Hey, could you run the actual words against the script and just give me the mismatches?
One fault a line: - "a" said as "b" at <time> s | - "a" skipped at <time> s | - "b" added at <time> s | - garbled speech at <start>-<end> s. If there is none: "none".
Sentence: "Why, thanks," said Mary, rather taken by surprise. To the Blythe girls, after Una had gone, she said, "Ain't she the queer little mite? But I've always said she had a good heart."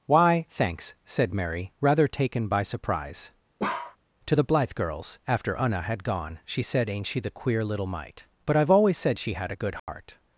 none